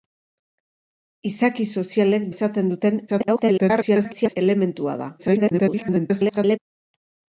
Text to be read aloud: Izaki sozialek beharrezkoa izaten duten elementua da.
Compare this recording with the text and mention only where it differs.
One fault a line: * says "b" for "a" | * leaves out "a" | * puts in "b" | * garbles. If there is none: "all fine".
* leaves out "beharrezkoa"
* garbles
* garbles